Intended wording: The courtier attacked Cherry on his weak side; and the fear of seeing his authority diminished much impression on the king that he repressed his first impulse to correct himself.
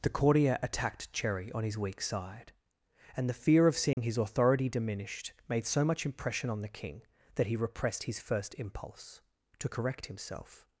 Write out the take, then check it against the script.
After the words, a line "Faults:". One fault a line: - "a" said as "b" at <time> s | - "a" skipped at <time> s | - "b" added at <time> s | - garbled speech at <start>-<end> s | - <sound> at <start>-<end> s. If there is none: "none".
The courtier attacked Cherry on his weak side; and the fear of seeing his authority diminished made so much impression on the king that he repressed his first impulse to correct himself.
Faults:
- dropout at 3.9-4.0 s
- "made so" added at 5.5 s